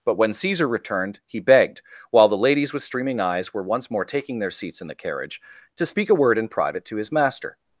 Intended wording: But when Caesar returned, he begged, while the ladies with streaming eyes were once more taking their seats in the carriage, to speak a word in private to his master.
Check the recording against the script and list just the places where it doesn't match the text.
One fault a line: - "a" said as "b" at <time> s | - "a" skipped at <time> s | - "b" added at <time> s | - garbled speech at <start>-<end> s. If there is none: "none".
none